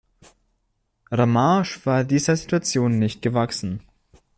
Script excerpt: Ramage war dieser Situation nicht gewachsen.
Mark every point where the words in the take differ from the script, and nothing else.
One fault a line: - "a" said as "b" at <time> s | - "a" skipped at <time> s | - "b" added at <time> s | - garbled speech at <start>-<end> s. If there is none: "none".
none